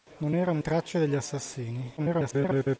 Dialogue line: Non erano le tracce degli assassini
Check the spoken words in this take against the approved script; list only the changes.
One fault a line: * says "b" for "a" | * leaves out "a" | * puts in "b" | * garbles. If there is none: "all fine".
* leaves out "le"
* garbles